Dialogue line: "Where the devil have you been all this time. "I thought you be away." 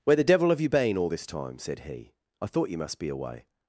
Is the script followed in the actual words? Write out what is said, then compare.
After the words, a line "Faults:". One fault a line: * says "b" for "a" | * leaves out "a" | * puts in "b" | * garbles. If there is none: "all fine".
"Where the devil have you been all this time?" said he. "I thought you must be away."
Faults:
* puts in "said he"
* puts in "must"